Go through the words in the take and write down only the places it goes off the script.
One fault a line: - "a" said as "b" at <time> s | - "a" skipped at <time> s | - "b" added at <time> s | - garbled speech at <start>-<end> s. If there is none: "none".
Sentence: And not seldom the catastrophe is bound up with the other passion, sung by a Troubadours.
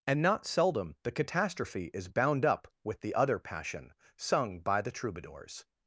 - "a" said as "the" at 4.8 s